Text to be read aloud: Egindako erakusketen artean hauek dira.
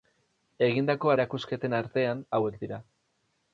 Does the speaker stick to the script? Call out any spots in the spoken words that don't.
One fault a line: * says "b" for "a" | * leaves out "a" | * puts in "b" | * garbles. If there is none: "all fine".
all fine